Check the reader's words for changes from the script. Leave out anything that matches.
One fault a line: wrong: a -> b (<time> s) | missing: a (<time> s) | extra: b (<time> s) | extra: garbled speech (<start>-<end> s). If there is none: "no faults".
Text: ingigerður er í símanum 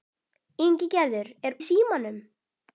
no faults